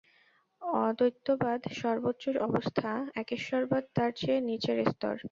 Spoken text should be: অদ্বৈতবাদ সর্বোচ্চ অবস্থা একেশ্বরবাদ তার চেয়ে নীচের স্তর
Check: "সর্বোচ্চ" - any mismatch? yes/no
no